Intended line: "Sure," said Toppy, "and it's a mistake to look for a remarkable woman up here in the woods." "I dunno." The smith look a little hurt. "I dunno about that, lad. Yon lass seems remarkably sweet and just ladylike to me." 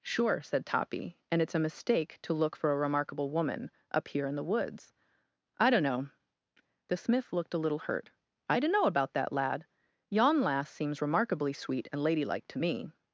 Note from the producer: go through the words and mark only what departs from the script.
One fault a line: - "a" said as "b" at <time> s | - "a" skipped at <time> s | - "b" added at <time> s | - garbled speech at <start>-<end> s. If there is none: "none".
- "look" said as "looked" at 7.3 s
- "just" skipped at 12.0 s